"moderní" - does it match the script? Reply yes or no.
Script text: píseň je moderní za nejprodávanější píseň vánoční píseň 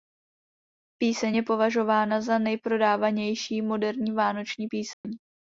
no